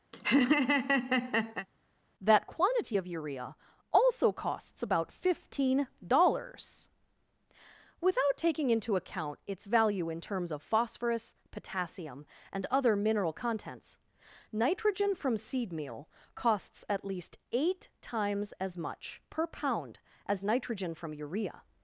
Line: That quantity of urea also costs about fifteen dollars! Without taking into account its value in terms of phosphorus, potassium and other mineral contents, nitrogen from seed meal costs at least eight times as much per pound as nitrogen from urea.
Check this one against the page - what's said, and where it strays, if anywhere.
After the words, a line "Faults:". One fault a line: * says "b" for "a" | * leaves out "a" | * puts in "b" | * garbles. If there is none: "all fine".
That quantity of urea also costs about fifteen dollars! Without taking into account its value in terms of phosphorus, potassium and other mineral contents, nitrogen from seed meal costs at least eight times as much per pound as nitrogen from urea.
Faults:
all fine